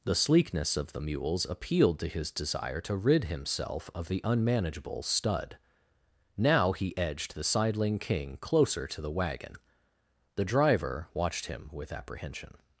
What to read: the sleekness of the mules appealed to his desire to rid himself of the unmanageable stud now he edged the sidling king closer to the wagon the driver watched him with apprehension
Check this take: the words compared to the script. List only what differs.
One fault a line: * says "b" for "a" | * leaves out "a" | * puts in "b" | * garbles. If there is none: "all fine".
all fine